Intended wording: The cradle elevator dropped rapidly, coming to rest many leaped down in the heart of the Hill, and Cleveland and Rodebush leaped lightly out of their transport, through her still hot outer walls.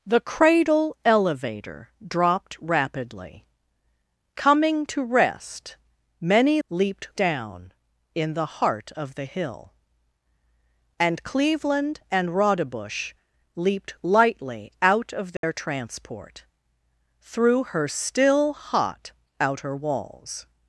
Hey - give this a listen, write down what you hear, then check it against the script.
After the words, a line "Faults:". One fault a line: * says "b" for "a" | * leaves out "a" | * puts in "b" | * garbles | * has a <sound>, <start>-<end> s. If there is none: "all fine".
The cradle elevator dropped rapidly, coming to rest many leaped down in the heart of the Hill, and Cleveland and Rodebush leaped lightly out of their transport, through her still hot outer walls.
Faults:
* has a dropout, 15.4-15.4 s